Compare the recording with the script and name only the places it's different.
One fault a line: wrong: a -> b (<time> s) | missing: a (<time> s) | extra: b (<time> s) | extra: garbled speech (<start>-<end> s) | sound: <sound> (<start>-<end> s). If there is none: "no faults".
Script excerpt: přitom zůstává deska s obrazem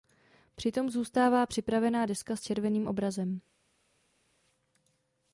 extra: připravená (1.4 s)
extra: červeným (2.4 s)